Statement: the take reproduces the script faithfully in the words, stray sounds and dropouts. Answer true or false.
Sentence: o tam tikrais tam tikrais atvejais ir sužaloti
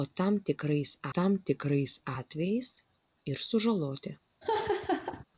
false